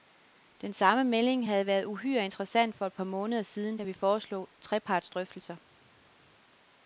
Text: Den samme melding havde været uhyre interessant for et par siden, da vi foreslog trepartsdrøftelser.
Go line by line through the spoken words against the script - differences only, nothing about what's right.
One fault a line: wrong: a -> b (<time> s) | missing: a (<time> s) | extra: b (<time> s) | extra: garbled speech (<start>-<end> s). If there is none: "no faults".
extra: måneder (3.0 s)